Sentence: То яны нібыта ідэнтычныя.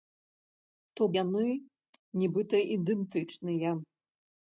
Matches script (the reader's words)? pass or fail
pass